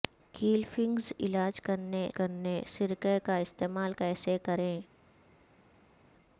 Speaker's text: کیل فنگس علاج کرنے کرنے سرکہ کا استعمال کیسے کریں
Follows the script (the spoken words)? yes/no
yes